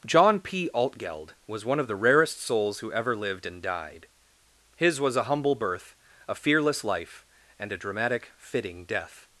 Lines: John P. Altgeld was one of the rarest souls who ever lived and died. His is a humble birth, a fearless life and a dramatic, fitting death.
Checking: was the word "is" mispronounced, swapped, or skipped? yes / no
yes